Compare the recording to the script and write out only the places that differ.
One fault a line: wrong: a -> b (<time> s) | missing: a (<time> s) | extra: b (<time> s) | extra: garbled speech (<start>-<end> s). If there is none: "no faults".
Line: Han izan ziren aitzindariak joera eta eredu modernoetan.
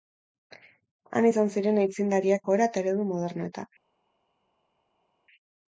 no faults